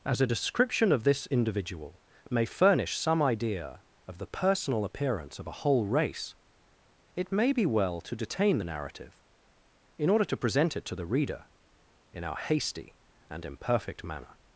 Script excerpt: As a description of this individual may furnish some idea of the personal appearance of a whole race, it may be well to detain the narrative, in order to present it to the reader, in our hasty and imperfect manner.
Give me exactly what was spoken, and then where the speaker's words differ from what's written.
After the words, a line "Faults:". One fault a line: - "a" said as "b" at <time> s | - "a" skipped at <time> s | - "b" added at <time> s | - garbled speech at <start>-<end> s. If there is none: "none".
As a description of this individual may furnish some idea of the personal appearance of a whole race, it may be well to detain the narrative, in order to present it to the reader, in our hasty and imperfect manner.
Faults:
none